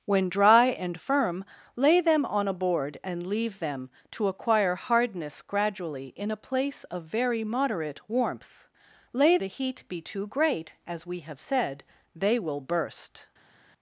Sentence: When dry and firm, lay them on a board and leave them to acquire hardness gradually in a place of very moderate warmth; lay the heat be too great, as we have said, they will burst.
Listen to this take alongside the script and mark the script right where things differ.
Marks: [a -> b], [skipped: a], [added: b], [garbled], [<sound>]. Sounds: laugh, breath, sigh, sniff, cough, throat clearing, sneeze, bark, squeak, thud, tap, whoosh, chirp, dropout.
When dry and firm, lay them on a board and leave them to acquire hardness gradually in a place of very moderate warmth; lay the heat be too great, as we have said, they will burst.